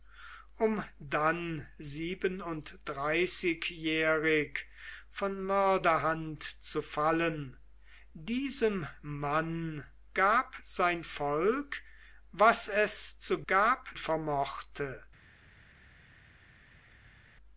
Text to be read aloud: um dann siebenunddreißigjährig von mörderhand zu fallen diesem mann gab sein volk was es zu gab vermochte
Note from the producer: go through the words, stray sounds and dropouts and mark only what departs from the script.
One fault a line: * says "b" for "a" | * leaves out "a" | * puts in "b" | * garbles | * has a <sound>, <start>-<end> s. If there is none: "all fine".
all fine